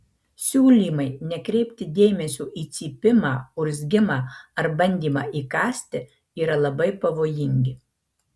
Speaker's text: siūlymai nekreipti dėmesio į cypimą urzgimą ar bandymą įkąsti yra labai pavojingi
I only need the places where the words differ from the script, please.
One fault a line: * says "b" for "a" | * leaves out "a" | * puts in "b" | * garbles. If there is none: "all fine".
all fine